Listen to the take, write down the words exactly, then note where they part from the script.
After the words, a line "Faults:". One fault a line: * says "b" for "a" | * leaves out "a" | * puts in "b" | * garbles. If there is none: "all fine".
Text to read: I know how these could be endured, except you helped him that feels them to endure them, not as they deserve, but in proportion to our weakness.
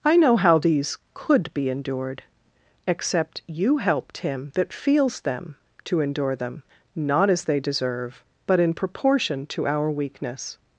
I know how these could be endured, except you helped him that feels them to endure them, not as they deserve, but in proportion to our weakness.
Faults:
all fine